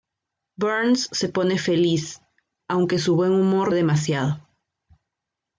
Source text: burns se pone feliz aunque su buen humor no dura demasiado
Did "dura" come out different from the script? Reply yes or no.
yes